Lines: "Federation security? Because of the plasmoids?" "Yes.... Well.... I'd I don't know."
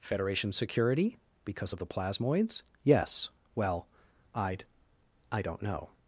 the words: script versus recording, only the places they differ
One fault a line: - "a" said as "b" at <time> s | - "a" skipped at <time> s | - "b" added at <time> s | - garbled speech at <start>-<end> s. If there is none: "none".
none